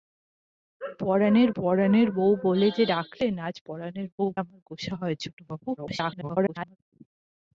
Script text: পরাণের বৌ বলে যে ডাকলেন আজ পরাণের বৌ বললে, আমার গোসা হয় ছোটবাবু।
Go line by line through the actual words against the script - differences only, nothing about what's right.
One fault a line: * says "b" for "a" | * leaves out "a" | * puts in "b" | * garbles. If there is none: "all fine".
* puts in "পরাণের"
* leaves out "বললে"
* garbles